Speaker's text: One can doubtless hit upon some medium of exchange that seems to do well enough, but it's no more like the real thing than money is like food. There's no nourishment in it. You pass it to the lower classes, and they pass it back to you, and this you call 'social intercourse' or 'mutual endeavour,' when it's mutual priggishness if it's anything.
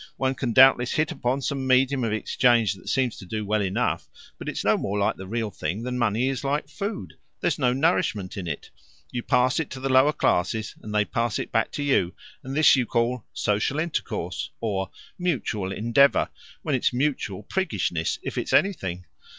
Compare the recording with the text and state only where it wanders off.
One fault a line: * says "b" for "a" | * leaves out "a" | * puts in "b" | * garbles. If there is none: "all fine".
all fine